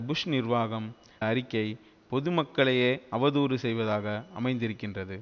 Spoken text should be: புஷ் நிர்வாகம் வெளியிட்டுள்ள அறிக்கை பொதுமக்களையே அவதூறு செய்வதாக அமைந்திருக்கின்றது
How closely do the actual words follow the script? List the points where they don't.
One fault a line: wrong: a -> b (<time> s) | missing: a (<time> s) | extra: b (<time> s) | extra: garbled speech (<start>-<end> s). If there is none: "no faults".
missing: வெளியிட்டுள்ள (0.9 s)